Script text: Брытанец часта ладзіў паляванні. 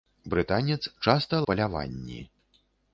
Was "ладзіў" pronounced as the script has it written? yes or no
no